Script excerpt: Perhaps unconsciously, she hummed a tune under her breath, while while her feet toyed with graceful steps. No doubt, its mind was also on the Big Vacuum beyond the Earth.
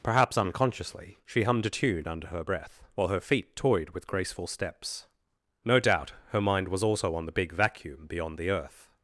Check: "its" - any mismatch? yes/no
yes